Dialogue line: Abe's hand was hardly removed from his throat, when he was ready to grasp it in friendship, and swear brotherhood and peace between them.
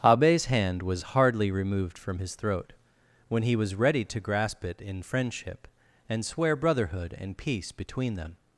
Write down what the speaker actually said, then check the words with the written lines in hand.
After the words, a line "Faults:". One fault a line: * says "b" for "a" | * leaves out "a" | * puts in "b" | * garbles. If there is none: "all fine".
Abe's hand was hardly removed from his throat, when he was ready to grasp it in friendship, and swear brotherhood and peace between them.
Faults:
all fine